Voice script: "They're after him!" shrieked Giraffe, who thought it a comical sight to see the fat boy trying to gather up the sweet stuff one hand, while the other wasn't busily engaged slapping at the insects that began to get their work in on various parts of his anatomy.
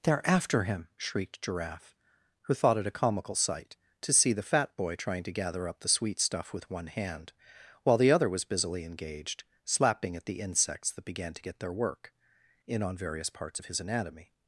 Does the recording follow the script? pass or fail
fail